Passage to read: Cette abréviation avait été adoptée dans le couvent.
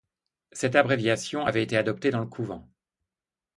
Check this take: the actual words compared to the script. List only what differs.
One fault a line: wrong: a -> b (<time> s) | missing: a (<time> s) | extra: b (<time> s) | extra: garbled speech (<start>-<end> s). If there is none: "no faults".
no faults